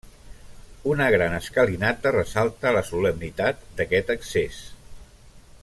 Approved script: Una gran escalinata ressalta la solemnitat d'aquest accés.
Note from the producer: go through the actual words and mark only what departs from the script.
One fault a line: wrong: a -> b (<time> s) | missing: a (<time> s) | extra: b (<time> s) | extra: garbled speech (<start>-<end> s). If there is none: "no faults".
no faults